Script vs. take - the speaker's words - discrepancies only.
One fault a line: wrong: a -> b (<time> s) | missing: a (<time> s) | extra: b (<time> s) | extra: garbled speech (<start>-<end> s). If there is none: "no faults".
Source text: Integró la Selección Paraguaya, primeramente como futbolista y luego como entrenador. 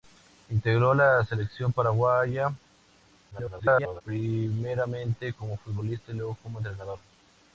extra: garbled speech (3.3-4.0 s)